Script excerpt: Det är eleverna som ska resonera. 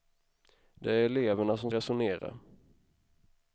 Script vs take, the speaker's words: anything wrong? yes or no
yes